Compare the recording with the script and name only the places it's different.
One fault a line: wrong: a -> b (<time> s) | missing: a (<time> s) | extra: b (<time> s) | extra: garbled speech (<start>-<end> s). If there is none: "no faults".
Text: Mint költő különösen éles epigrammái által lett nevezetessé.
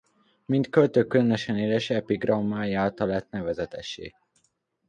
no faults